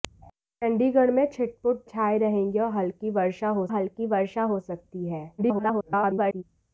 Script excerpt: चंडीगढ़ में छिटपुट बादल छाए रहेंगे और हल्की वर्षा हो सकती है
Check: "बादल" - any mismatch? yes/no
yes